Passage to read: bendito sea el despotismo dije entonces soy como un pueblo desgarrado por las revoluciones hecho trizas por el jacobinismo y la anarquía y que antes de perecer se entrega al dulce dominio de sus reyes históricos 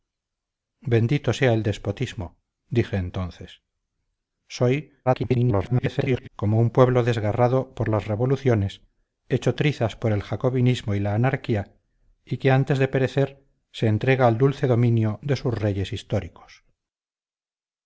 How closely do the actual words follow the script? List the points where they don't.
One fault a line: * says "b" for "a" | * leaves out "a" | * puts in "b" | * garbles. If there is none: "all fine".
* garbles